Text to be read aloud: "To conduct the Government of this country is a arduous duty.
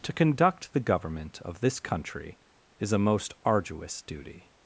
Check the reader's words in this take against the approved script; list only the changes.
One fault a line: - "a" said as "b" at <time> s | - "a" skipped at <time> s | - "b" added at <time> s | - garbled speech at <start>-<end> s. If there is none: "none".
- "most" added at 3.0 s